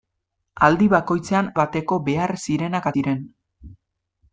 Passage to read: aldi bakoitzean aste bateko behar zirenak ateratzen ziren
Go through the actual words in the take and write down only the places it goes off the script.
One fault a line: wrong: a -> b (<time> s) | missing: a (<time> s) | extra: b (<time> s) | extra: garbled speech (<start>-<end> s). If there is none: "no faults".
missing: aste (1.5 s)
missing: ateratzen (2.9 s)